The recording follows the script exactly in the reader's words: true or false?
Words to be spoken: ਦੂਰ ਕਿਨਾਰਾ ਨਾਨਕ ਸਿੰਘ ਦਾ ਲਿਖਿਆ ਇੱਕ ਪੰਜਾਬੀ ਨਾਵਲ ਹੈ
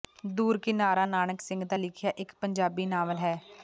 true